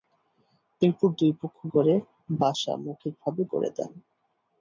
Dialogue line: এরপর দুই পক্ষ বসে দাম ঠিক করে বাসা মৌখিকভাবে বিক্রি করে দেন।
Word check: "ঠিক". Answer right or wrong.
wrong